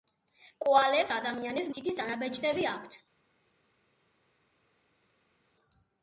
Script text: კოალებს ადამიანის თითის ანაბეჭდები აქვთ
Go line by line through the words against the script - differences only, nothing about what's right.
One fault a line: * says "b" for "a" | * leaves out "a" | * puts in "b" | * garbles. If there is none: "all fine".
all fine